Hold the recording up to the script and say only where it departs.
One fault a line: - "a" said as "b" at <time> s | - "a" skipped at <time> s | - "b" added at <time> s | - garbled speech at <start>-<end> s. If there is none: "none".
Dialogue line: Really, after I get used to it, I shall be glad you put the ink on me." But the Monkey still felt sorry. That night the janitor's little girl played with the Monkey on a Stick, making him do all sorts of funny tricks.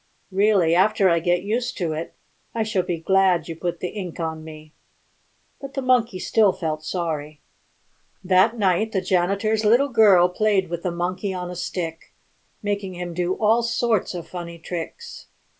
none